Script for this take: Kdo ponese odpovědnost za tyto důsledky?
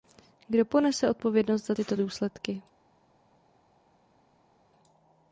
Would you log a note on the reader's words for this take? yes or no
no